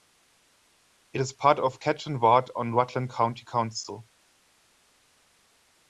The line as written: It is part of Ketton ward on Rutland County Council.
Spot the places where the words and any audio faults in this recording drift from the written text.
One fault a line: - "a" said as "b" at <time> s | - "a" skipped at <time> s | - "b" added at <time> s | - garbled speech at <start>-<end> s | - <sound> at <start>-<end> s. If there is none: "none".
none